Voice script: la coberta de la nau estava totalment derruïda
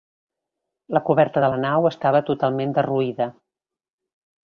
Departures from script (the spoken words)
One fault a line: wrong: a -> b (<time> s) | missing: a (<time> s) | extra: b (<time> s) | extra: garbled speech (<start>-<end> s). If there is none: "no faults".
no faults